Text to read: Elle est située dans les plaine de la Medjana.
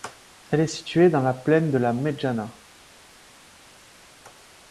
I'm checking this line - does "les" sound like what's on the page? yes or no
no